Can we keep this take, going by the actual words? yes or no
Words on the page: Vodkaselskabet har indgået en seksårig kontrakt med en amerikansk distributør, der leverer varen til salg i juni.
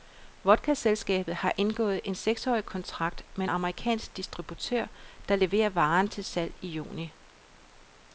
yes